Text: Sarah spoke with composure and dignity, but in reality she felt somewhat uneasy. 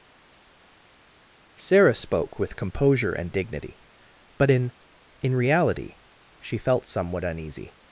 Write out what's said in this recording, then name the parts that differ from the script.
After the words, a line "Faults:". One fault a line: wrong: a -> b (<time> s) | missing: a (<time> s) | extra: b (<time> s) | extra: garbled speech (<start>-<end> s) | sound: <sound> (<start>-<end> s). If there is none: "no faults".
Sarah spoke with composure and dignity, but in in reality she felt somewhat uneasy.
Faults:
extra: in (5.2 s)